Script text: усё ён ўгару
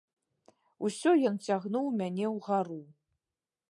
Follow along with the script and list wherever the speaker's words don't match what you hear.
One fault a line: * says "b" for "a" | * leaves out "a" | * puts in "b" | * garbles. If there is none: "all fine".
* puts in "цягнуў мяне"